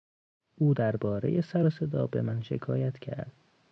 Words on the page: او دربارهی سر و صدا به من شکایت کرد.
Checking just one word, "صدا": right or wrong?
right